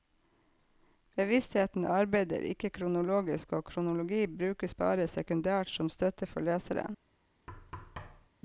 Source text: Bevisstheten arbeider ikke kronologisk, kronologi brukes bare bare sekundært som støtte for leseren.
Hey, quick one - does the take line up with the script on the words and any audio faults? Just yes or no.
no